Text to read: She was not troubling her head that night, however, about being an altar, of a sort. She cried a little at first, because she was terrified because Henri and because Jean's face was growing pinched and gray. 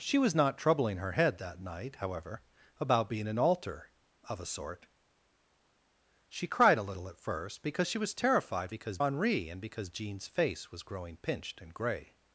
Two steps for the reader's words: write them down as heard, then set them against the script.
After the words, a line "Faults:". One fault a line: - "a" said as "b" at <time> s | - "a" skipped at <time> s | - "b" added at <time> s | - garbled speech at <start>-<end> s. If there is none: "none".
She was not troubling her head that night, however, about being an altar, of a sort. She cried a little at first, because she was terrified because Henri and because Jean's face was growing pinched and gray.
Faults:
none